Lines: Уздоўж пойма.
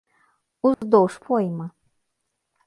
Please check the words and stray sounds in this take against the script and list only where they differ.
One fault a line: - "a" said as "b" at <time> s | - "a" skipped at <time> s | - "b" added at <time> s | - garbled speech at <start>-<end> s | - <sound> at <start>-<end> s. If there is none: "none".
- dropout at 0.7-0.8 s